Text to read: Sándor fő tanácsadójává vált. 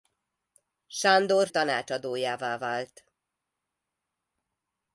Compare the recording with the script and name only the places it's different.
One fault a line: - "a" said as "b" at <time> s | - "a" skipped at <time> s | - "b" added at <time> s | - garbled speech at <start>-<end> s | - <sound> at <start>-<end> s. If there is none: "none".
- "fő" skipped at 1.5 s